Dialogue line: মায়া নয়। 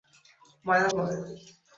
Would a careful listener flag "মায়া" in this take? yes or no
no